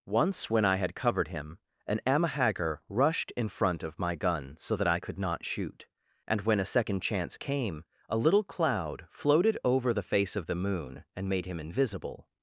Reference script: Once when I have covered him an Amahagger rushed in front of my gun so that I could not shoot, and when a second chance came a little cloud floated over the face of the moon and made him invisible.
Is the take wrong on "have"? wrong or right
wrong